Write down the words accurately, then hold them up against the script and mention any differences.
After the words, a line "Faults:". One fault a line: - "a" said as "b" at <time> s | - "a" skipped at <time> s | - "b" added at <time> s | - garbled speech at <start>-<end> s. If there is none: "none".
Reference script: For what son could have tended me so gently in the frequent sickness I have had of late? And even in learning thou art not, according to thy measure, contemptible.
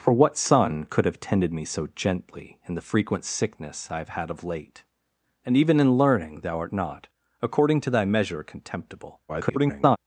For what son could have tended me so gently in the frequent sickness I have had of late? And even in learning thou art not, according to thy measure, contemptible. [garbled]
Faults:
- garbled speech at 9.3-10.0 s